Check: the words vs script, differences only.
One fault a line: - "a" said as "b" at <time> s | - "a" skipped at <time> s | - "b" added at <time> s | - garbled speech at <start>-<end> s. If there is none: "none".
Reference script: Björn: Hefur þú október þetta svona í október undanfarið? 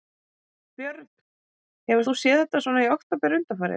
- "október" said as "séð" at 2.2 s